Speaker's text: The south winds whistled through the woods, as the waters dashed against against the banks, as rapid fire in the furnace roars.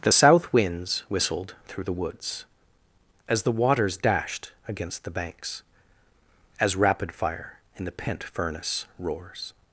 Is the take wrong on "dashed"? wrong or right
right